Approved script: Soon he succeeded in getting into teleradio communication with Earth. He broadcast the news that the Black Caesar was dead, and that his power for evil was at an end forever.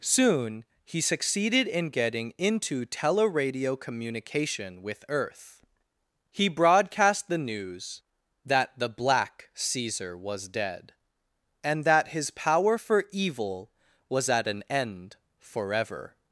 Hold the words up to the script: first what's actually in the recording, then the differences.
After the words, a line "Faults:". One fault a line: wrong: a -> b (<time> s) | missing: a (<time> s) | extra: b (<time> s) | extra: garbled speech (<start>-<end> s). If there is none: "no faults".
Soon he succeeded in getting into teleradio communication with Earth. He broadcast the news that the Black Caesar was dead, and that his power for evil was at an end forever.
Faults:
no faults